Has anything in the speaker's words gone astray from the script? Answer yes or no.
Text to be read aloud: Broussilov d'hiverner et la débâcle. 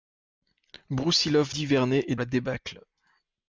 no